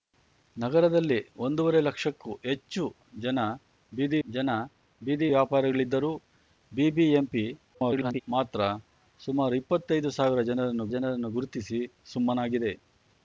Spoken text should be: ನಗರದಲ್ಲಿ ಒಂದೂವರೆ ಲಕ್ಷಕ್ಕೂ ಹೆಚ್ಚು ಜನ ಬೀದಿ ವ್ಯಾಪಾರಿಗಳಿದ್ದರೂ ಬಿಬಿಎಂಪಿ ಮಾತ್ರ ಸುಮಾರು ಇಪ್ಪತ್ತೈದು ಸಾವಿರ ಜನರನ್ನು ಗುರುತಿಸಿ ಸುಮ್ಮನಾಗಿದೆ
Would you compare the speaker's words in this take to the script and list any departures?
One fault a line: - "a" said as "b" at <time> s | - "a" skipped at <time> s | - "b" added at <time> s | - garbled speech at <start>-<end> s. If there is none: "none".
- "ಜನ ಬೀದಿ" added at 4.3 s
- garbled speech at 7.7-8.2 s
- "ಜನರನ್ನು" added at 10.9 s